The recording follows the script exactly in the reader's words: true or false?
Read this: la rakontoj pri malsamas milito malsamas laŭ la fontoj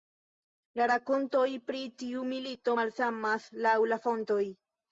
false